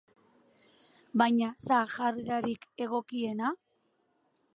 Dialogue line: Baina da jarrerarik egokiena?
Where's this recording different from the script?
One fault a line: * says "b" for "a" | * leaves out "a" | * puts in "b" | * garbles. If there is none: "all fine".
all fine